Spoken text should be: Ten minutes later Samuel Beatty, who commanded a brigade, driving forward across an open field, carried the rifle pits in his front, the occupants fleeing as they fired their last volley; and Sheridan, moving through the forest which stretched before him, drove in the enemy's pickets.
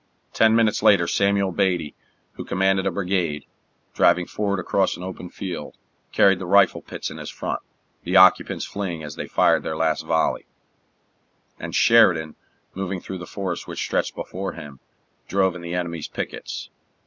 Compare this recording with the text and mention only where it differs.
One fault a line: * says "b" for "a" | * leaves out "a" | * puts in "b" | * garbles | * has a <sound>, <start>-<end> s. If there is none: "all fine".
all fine